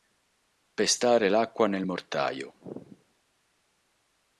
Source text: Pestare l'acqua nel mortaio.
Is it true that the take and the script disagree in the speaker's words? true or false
false